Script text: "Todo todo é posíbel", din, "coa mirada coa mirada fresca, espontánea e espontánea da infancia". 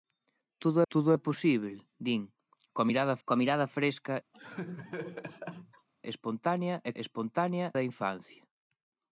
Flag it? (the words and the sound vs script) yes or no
yes